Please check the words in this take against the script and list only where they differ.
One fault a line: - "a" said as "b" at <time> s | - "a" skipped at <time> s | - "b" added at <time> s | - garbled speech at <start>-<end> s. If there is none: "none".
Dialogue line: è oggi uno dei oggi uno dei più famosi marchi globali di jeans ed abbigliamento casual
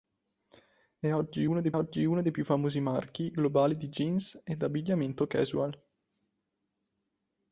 none